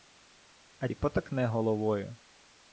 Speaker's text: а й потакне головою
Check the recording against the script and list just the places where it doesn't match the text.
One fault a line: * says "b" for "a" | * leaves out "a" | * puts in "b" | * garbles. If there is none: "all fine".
all fine